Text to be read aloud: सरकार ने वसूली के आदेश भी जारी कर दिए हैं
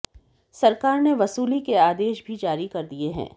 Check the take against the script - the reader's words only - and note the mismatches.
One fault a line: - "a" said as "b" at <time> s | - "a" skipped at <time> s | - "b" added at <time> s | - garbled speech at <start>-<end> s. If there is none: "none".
none